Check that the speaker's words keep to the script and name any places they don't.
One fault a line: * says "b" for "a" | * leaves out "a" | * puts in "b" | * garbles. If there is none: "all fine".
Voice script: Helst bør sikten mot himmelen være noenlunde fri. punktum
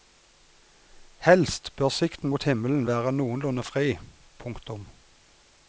all fine